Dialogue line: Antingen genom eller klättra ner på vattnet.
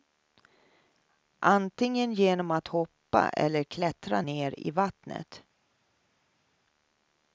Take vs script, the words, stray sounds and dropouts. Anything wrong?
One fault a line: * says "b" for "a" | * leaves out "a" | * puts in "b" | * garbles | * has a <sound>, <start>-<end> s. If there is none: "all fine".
* puts in "att hoppa"
* says "i" for "på"